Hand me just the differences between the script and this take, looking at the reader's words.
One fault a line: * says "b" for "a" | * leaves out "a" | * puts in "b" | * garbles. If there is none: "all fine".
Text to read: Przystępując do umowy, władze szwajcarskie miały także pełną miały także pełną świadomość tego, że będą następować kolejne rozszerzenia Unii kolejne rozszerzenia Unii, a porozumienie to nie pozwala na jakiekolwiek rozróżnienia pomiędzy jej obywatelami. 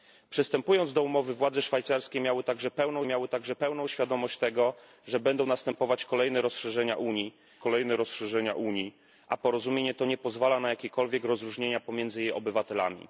all fine